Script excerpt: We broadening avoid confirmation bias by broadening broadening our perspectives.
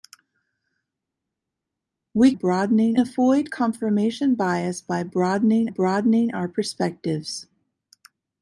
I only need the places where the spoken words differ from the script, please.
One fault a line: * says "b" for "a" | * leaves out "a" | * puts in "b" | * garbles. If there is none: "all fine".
all fine